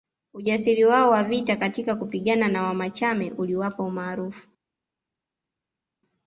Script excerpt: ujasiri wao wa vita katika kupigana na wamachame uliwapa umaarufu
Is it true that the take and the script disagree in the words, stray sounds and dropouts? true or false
false